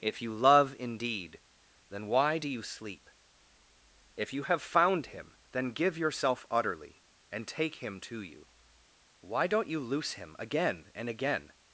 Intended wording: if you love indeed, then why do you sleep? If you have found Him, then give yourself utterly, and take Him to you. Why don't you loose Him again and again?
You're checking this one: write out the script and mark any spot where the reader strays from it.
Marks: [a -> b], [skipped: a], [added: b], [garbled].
if you love indeed, then why do you sleep? If you have found Him, then give yourself utterly, and take Him to you. Why don't you loose Him again and again?